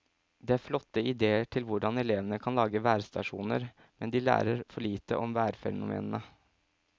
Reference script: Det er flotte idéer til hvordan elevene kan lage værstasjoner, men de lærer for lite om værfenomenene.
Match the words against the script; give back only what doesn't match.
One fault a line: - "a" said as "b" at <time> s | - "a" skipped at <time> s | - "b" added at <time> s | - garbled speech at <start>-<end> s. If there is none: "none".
none